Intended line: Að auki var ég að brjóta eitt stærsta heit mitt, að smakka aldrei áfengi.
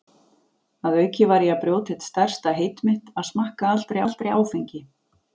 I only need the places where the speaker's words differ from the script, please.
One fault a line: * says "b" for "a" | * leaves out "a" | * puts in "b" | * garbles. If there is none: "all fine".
* puts in "aldrei"